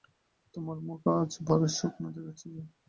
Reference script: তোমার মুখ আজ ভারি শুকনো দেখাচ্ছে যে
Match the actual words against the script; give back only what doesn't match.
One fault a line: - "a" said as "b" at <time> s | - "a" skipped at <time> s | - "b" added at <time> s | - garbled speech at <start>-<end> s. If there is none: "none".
none